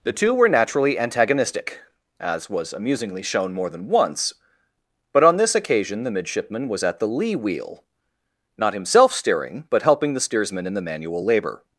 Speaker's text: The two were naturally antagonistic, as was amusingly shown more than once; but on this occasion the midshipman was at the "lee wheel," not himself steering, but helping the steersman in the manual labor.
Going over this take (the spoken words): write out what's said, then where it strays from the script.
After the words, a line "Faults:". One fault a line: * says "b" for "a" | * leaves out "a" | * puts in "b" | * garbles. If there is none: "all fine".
The two were naturally antagonistic, as was amusingly shown more than once; but on this occasion the midshipman was at the "lee wheel," not himself steering, but helping the steersman in the manual labor.
Faults:
all fine